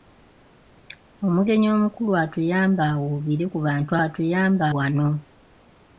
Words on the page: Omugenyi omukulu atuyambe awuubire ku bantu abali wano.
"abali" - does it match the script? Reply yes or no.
no